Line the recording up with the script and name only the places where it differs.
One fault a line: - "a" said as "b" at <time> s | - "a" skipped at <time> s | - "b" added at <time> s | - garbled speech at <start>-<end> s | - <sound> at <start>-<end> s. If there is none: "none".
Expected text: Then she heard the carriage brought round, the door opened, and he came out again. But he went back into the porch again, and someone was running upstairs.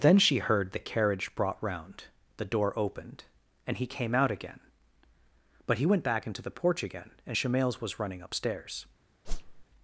- "someone" said as "shemales" at 7.3 s
- whoosh at 9.2-9.6 s